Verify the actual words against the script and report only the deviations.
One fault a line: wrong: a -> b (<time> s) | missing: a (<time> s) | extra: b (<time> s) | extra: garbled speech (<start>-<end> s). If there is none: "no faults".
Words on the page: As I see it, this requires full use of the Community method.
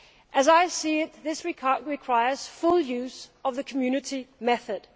no faults